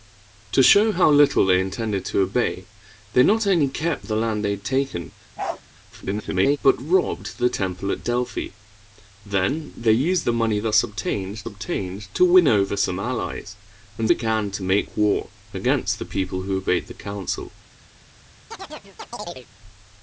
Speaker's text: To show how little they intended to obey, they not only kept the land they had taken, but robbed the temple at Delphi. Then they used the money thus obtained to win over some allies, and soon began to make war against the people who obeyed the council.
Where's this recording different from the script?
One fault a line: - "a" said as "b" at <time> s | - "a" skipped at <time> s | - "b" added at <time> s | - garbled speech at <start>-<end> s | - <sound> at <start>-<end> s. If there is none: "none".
- bark at 5.4-5.6 s
- garbled speech at 5.9-6.6 s
- "obtained" added at 11.4 s
- "soon" skipped at 14.1 s
- chirp at 18.5-19.5 s